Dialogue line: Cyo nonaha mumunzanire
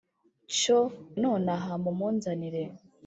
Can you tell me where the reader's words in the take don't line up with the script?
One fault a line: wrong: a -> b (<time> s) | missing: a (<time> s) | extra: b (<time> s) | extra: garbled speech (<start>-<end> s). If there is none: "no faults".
no faults